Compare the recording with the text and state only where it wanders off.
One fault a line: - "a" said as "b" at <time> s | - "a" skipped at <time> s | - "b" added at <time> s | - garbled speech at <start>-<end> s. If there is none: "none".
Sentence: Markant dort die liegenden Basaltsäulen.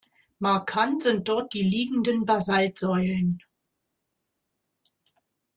- "sind" added at 1.0 s